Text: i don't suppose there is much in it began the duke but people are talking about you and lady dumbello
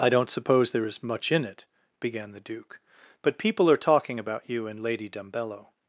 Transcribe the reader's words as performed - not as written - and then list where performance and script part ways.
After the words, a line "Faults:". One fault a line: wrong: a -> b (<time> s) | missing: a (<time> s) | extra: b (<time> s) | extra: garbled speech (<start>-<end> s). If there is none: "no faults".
i don't suppose there is much in it began the duke but people are talking about you and lady dumbello
Faults:
no faults